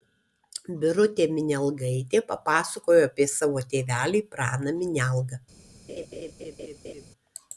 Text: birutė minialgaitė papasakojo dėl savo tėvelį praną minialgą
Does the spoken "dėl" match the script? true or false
false